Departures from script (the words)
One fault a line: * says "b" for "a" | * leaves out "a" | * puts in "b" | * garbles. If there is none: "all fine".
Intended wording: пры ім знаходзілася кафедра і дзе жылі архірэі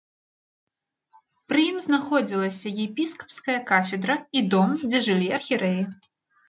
* puts in "епіскапская"
* puts in "дом"